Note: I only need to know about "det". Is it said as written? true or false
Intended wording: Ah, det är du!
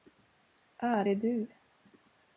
false